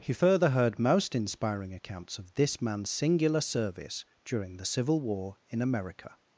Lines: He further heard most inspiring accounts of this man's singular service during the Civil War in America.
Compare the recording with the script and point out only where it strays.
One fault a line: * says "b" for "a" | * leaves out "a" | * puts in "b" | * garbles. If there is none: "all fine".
all fine